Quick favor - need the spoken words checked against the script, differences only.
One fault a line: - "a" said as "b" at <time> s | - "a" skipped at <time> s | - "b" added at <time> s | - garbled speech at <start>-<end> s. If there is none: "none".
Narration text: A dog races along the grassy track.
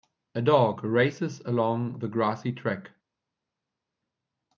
none